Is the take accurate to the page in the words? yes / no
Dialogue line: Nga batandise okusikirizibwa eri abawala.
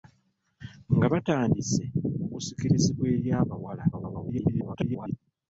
no